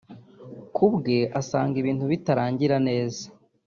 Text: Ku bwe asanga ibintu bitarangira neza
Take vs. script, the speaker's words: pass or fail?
pass